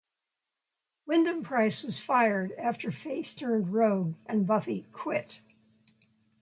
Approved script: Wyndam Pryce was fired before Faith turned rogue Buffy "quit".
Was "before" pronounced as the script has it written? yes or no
no